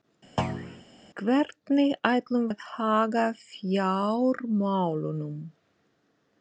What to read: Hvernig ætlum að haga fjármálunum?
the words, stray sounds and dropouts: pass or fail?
fail